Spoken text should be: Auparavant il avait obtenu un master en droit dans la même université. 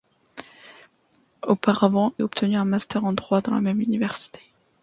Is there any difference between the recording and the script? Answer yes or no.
yes